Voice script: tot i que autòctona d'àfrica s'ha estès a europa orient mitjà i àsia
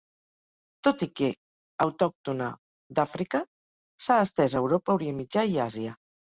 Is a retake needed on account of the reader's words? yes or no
no